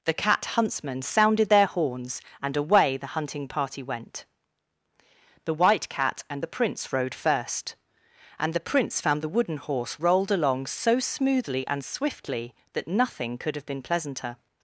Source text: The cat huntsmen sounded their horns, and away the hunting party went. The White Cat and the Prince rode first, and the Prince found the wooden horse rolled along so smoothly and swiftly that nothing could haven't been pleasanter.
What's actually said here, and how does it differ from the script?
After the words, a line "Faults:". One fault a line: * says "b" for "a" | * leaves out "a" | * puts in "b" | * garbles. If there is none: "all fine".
The cat huntsmen sounded their horns, and away the hunting party went. The White Cat and the Prince rode first, and the Prince found the wooden horse rolled along so smoothly and swiftly that nothing could have been pleasanter.
Faults:
* says "have" for "haven't"